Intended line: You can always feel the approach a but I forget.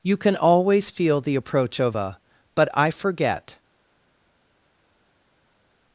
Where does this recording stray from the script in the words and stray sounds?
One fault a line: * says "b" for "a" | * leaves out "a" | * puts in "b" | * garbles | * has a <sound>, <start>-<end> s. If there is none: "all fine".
* puts in "of"